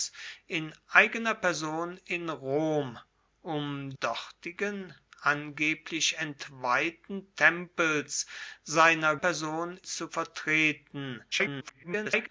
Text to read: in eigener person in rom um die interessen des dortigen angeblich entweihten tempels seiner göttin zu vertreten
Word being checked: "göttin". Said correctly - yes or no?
no